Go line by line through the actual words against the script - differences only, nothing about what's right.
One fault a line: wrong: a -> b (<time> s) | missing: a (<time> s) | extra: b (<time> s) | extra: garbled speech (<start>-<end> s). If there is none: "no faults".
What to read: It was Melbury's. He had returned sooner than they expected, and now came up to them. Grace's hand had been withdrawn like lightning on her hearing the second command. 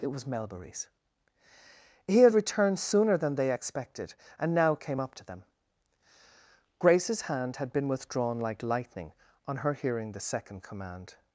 no faults